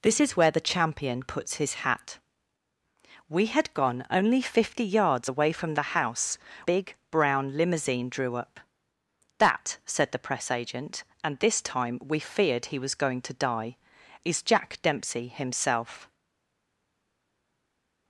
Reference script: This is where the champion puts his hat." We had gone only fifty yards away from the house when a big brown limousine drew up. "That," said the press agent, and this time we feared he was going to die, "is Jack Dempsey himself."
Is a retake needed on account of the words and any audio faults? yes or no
yes